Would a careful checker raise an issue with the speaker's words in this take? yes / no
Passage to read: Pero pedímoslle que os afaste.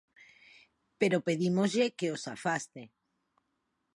no